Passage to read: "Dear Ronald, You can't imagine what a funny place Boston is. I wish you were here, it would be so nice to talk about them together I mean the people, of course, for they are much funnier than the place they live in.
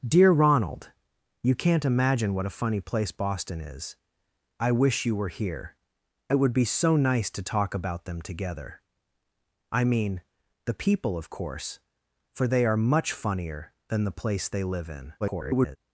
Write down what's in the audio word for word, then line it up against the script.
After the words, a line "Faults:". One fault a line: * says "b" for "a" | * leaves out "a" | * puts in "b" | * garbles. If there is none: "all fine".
"Dear Ronald, You can't imagine what a funny place Boston is. I wish you were here, it would be so nice to talk about them together I mean the people, of course, for they are much funnier than the place they live in. [garbled]
Faults:
* garbles